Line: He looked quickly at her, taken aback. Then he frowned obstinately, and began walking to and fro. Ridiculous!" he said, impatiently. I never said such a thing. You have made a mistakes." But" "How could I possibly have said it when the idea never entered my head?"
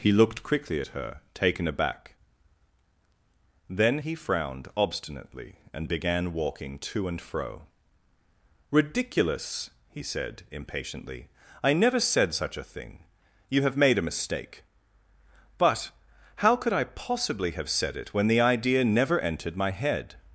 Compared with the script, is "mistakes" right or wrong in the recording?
wrong